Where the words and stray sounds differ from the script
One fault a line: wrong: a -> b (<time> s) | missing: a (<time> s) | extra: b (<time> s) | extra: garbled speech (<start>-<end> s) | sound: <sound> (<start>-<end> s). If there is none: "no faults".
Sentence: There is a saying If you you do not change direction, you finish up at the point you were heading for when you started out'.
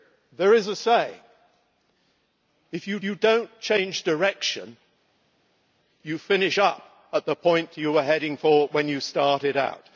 no faults